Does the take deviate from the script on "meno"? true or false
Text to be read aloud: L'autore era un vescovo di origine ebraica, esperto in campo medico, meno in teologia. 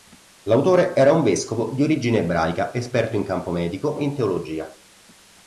true